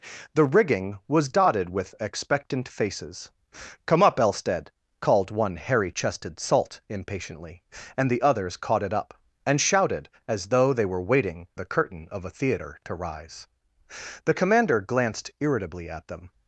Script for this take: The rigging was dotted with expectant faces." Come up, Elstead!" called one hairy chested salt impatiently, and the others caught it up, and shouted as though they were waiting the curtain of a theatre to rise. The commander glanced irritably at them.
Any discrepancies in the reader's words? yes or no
no